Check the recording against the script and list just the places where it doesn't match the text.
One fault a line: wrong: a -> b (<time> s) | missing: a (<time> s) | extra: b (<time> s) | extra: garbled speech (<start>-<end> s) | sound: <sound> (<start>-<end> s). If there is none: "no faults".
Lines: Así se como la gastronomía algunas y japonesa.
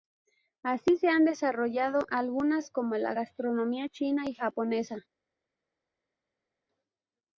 extra: han desarrollado algunas (1.1 s)
wrong: algunas -> china (3.9 s)